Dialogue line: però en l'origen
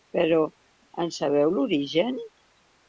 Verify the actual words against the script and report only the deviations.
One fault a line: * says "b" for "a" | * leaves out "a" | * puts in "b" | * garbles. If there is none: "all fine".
* puts in "sabeu"